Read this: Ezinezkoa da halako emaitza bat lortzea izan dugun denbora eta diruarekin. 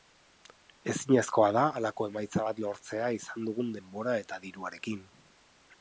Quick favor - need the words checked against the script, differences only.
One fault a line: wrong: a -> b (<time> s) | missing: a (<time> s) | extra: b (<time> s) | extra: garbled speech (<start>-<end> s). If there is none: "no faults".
no faults